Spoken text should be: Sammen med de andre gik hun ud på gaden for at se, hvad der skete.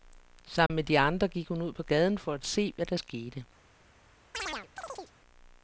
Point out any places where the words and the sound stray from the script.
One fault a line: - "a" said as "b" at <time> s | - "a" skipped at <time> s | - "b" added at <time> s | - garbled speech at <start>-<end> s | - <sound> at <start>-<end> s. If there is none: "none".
- dropout at 0.7-0.7 s
- chirp at 4.3-5.1 s